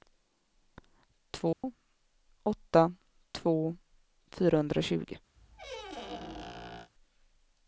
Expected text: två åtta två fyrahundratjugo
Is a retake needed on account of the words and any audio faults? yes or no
yes